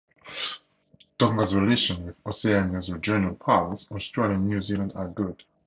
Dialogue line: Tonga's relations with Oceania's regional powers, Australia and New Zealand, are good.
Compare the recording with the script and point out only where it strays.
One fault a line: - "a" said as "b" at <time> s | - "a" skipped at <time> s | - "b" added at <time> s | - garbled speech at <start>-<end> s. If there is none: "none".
none